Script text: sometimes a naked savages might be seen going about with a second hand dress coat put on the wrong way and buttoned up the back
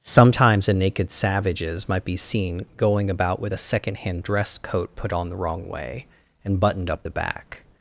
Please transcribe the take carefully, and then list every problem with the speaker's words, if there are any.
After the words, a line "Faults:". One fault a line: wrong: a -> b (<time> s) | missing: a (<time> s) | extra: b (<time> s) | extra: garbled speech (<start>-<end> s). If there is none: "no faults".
sometimes a naked savages might be seen going about with a second hand dress coat put on the wrong way and buttoned up the back
Faults:
no faults